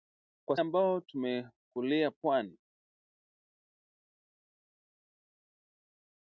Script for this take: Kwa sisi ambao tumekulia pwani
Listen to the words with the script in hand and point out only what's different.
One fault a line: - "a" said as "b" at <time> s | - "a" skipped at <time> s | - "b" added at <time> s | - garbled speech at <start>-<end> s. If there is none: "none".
- "sisi" skipped at 0.6 s